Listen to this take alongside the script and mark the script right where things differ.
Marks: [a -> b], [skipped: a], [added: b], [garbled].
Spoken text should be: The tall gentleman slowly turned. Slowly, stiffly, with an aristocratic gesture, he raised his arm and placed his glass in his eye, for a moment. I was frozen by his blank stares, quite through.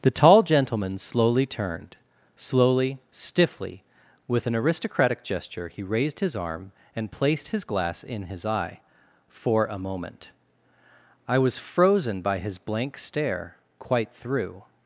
The tall gentleman slowly turned. Slowly, stiffly, with an aristocratic gesture, he raised his arm and placed his glass in his eye, for a moment. I was frozen by his blank [stares, -> stare] quite through.